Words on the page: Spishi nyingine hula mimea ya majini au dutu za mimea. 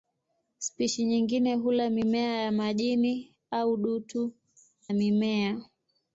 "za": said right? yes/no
no